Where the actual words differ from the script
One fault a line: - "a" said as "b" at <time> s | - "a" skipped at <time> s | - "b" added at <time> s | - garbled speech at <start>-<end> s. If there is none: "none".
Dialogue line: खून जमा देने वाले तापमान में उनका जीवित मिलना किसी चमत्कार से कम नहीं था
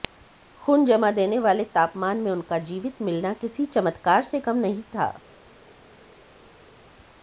none